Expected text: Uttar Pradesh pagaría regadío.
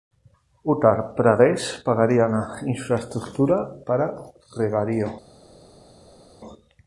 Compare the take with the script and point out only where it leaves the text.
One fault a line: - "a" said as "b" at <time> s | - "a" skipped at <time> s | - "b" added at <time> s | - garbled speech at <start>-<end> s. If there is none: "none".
- "la infraestructura para" added at 2.3 s